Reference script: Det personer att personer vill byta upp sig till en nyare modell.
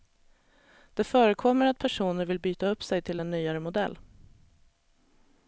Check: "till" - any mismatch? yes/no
no